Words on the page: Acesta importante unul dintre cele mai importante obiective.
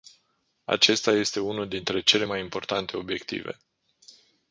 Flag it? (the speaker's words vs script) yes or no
yes